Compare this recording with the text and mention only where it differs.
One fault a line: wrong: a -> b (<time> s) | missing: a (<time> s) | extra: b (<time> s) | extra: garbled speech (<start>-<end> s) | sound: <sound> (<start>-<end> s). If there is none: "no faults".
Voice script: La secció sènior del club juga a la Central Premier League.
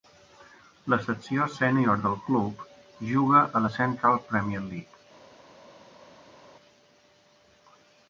no faults